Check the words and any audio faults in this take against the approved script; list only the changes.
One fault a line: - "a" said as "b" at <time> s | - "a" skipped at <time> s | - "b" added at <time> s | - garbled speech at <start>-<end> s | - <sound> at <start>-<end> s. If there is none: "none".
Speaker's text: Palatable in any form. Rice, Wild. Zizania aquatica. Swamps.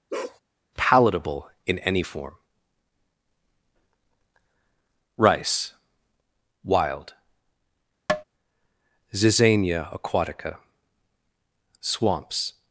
- bark at 0.1-0.4 s
- tap at 8.1-8.2 s